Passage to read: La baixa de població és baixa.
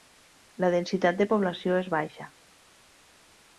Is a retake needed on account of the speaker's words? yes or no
yes